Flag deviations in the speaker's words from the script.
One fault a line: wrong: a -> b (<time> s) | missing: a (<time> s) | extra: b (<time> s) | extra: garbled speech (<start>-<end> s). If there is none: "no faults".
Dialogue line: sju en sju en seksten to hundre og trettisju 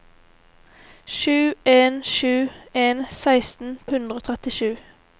missing: to (3.8 s)